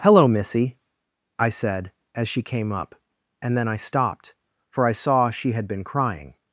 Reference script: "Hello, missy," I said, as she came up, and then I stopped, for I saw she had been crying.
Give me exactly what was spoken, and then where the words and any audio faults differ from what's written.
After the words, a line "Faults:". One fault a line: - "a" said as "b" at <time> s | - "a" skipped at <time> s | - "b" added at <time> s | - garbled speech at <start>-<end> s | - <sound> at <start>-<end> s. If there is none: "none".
"Hello, missy," I said, as she came up, and then I stopped, for I saw she had been crying.
Faults:
none